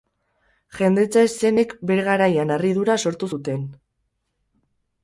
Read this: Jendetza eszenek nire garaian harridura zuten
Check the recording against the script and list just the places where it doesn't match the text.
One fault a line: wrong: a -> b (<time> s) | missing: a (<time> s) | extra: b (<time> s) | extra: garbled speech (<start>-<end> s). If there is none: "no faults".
wrong: nire -> bere (1.9 s)
extra: sortu (3.1 s)